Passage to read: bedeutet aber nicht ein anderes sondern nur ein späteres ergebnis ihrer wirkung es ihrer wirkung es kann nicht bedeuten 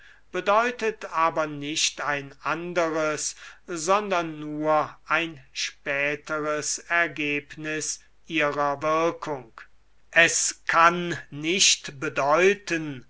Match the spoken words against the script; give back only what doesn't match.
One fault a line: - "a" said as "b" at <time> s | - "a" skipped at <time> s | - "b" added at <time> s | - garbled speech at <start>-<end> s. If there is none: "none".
- "ihrer wirkung es" skipped at 10.6 s